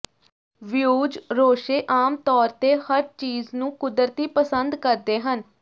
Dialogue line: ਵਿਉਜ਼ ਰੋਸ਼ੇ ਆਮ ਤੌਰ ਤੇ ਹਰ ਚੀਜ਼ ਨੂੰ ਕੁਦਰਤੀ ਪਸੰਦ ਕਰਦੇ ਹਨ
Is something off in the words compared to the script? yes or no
no